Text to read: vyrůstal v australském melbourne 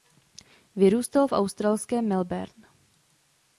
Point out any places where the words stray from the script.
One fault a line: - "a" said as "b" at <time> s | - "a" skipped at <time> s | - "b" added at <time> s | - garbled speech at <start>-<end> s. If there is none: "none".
none